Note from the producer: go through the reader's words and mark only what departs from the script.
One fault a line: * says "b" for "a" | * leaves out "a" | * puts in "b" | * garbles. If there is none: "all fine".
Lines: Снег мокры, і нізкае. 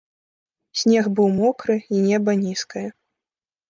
* puts in "быў"
* puts in "неба"